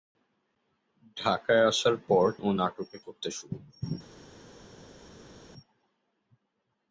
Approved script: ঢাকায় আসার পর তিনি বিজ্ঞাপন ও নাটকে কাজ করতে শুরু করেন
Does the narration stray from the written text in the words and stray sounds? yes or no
yes